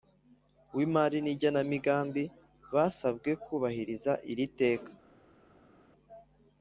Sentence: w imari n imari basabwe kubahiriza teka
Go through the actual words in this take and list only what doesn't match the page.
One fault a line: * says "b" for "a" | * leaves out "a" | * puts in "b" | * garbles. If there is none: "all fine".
* says "igenamigambi" for "imari"
* puts in "iri"